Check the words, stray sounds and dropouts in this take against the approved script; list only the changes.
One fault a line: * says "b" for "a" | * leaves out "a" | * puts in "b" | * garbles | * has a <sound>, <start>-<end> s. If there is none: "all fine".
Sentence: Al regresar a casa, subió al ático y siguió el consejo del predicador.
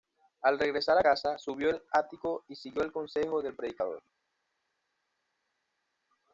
all fine